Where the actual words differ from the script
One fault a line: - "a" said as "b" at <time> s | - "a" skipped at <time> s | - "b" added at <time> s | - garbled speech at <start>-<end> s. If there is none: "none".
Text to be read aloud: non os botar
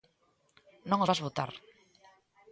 - "vas" added at 1.1 s